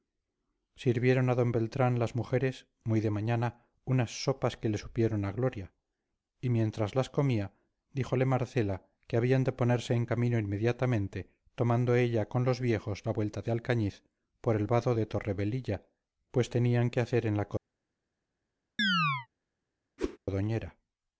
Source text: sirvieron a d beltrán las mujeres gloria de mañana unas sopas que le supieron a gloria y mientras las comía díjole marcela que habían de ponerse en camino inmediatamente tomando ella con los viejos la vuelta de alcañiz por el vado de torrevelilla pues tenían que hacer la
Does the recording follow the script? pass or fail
fail